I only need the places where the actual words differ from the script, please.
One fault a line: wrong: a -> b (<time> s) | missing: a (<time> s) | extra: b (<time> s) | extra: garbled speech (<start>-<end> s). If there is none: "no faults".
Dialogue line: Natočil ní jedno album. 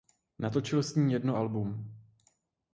extra: s (0.8 s)